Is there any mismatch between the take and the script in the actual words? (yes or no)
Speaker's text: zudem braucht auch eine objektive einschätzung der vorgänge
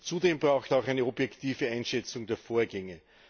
no